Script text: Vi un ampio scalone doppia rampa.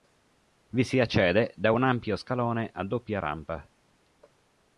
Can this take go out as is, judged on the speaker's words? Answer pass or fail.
fail